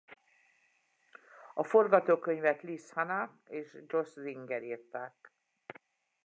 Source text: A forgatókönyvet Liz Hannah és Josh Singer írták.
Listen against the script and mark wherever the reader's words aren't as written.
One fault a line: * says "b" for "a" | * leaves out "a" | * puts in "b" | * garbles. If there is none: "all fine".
all fine